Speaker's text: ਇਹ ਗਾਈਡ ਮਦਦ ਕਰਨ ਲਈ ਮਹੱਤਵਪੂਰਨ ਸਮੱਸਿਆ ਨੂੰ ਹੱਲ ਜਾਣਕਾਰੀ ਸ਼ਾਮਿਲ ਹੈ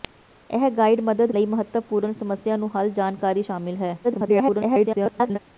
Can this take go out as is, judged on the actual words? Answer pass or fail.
fail